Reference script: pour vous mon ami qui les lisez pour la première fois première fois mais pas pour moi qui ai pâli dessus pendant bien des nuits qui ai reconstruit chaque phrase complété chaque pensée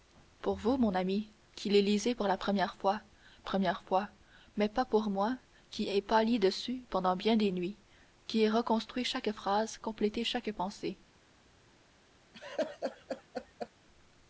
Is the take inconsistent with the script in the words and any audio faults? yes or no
yes